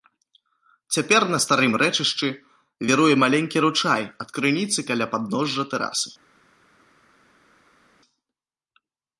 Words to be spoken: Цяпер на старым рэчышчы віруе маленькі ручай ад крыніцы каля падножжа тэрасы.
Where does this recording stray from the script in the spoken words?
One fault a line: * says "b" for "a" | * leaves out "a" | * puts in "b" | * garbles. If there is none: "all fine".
all fine